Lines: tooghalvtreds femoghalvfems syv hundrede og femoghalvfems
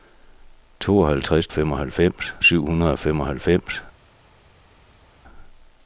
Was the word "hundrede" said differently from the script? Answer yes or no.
no